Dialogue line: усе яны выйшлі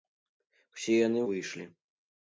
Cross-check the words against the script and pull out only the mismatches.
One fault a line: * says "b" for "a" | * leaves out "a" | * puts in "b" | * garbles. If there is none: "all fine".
all fine